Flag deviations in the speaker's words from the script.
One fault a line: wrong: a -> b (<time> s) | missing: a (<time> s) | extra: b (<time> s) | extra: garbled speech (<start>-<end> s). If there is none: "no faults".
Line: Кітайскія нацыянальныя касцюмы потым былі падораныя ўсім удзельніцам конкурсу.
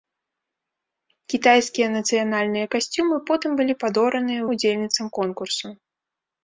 missing: ўсім (4.4 s)